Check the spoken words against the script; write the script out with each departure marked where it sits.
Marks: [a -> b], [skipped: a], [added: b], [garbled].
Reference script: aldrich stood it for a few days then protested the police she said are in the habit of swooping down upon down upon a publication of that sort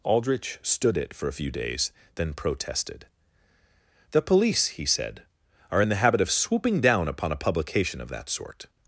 aldrich stood it for a few days then protested the police [she -> he] said are in the habit of swooping down upon [skipped: down upon] a publication of that sort